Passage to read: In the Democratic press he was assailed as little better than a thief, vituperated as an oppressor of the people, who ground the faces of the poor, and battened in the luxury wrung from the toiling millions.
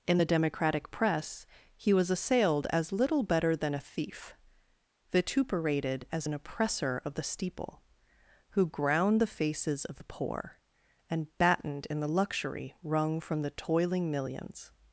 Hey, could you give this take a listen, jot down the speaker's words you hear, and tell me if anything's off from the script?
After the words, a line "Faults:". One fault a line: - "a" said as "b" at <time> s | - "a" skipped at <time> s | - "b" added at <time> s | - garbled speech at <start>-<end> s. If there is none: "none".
In the Democratic press he was assailed as little better than a thief, vituperated as an oppressor of the steeple, who ground the faces of the poor, and battened in the luxury wrung from the toiling millions.
Faults:
- "people" said as "steeple" at 7.2 s